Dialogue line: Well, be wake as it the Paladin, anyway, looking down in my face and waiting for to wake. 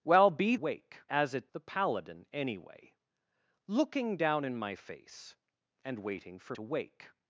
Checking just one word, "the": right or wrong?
right